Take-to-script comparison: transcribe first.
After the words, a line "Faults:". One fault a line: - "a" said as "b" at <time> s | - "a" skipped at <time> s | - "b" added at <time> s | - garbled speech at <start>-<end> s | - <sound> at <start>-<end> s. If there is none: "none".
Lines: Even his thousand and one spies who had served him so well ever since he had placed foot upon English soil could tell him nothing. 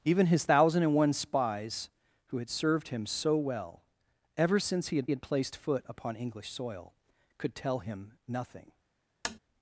Even his thousand and one spies who had served him so well ever since he had had placed foot upon English soil could tell him nothing.
Faults:
- "had" added at 5.1 s
- tap at 9.2-9.4 s